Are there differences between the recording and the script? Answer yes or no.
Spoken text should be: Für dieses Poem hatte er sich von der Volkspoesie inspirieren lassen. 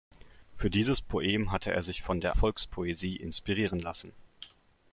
no